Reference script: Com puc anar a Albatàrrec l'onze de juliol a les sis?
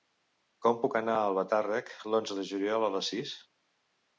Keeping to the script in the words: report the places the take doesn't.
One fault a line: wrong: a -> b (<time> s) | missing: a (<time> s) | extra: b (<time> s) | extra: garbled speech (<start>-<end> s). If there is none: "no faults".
no faults